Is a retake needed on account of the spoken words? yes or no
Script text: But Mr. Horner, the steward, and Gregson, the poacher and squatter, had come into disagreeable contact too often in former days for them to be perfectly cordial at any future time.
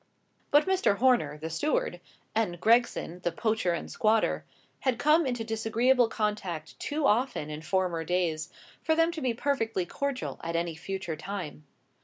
no